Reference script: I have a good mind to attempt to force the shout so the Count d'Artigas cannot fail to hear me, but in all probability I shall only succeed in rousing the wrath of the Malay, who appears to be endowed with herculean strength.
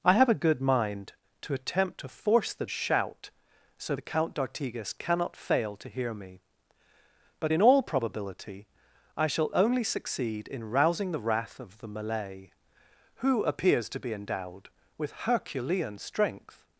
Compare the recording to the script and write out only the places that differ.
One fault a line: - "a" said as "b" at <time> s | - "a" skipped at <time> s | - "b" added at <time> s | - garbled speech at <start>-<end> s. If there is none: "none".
none